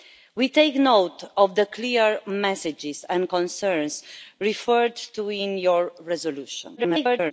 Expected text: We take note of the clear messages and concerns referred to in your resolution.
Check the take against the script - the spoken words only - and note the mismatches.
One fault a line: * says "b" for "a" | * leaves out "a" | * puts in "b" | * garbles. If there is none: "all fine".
* garbles